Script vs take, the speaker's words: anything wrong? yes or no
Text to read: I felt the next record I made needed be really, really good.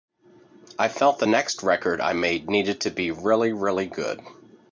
yes